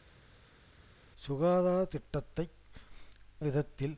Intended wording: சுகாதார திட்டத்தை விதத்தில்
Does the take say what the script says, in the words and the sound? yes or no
yes